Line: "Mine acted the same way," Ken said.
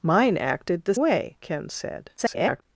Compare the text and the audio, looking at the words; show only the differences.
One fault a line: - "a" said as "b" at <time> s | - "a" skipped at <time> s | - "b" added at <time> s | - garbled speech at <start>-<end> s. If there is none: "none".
- "same" skipped at 0.9 s
- garbled speech at 2.2-2.6 s